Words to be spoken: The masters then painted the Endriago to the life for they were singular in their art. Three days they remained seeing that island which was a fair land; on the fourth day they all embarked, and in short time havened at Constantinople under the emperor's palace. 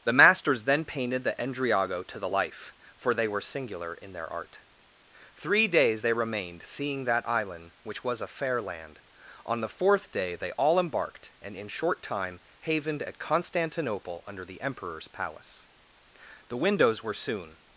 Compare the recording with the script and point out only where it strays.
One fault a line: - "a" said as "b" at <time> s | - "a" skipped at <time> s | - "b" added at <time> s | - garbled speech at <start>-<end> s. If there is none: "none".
- "The windows were soon" added at 16.5 s